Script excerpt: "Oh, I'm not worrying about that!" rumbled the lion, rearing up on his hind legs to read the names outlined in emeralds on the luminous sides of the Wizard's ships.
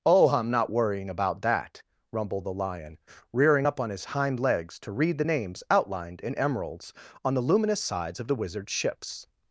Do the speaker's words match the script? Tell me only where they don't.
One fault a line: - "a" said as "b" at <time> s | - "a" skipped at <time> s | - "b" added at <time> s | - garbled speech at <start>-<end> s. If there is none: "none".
none